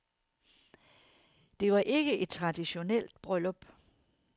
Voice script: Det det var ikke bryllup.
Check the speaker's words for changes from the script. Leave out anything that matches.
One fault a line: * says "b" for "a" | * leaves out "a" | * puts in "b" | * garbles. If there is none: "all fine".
* leaves out "det"
* puts in "et traditionelt"